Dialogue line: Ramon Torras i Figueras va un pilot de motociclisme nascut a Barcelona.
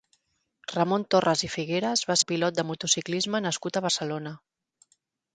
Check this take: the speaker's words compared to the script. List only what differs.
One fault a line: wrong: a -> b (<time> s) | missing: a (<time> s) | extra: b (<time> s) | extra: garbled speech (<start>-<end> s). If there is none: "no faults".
no faults